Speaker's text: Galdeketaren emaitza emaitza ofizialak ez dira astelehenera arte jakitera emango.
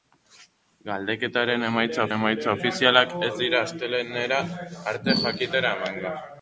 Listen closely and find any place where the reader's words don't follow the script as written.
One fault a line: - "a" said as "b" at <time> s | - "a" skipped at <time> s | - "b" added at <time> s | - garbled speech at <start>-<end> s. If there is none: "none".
none